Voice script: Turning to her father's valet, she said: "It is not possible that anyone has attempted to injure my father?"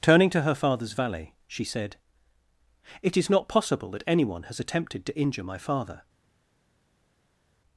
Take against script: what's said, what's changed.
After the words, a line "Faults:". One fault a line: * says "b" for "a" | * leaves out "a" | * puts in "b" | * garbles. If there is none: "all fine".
Turning to her father's valet, she said: "It is not possible that anyone has attempted to injure my father?"
Faults:
all fine